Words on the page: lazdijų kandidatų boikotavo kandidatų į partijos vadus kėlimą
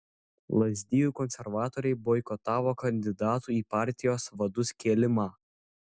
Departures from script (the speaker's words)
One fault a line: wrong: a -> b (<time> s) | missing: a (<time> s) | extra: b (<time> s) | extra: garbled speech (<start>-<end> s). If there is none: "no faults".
wrong: kandidatų -> konservatoriai (1.2 s)